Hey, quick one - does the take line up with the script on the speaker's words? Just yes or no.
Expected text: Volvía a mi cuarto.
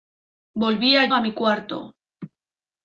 yes